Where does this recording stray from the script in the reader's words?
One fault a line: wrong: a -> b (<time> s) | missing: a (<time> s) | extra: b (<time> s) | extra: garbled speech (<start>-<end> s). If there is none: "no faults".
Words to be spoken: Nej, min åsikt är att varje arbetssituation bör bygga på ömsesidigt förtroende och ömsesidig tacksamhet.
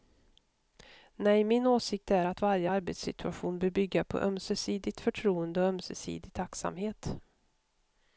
no faults